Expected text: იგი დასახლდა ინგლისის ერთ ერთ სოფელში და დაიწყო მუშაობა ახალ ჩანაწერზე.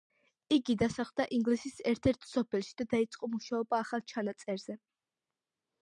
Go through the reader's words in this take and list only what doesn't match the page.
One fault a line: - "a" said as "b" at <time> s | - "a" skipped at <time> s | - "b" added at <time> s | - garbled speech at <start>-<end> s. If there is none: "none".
none